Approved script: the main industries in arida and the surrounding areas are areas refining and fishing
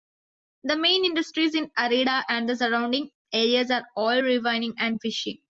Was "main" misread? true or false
false